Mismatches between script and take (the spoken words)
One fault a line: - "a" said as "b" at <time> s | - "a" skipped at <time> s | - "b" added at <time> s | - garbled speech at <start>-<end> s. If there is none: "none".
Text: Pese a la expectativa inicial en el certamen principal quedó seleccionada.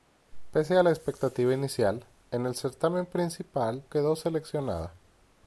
none